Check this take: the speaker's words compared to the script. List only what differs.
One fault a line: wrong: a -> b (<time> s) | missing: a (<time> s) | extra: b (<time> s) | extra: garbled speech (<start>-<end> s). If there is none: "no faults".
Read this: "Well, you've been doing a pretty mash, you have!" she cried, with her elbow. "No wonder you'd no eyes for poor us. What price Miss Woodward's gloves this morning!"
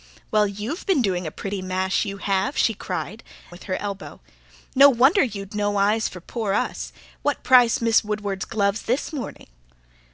no faults